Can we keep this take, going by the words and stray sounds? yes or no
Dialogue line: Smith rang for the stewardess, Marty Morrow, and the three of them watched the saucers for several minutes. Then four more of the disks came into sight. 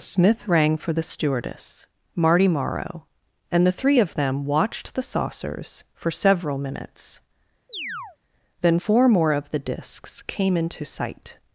no